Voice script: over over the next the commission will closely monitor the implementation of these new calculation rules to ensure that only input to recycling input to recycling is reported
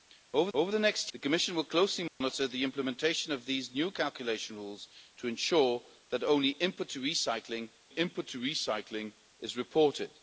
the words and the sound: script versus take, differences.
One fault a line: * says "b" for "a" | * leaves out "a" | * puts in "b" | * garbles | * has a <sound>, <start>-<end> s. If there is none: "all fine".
* has a dropout, 2.1-2.2 s